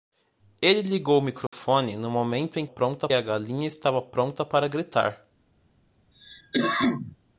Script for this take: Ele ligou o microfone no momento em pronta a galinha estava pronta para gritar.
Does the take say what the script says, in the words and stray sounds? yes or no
no